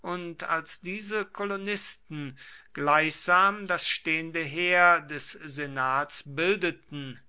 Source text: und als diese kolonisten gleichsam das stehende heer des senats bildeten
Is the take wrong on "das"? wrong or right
right